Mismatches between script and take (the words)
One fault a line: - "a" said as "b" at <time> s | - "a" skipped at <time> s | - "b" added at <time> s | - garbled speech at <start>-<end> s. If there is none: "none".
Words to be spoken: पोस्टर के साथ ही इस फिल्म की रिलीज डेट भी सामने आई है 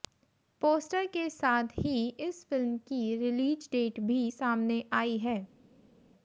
none